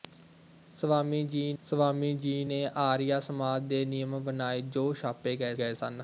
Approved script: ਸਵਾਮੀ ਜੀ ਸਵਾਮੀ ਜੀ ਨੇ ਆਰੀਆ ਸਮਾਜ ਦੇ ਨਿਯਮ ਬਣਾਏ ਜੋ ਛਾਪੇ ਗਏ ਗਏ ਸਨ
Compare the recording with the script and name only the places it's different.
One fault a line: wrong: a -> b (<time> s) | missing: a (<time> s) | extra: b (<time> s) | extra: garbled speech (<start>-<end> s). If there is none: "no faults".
no faults